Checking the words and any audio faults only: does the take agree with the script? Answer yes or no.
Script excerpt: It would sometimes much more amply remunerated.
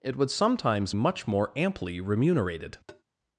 no